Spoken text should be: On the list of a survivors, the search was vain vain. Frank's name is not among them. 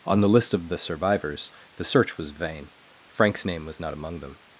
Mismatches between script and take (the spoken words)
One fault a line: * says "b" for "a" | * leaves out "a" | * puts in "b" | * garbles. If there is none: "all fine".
* says "the" for "a"
* leaves out "vain"
* says "was" for "is"